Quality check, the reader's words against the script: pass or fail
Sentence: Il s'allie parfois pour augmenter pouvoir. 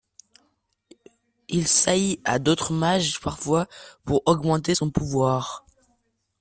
fail